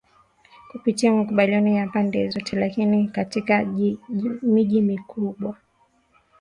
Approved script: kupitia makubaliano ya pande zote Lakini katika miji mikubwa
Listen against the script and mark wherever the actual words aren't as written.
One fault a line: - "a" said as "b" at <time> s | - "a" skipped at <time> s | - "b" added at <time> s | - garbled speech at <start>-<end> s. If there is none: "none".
none